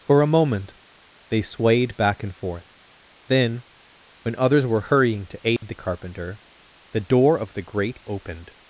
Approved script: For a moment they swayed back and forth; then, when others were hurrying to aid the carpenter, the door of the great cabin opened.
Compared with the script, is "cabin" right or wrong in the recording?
wrong